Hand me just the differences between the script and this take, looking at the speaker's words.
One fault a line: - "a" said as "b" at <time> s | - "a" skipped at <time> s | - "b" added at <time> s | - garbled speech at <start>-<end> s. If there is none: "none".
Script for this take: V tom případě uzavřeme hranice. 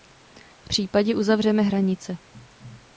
- "tom" skipped at 0.7 s